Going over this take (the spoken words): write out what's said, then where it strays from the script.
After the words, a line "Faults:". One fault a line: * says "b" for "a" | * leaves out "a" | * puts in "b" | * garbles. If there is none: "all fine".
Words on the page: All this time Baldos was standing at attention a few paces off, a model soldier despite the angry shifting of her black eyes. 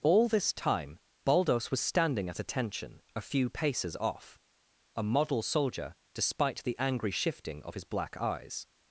All this time Baldos was standing at attention a few paces off, a model soldier despite the angry shifting of his black eyes.
Faults:
* says "his" for "her"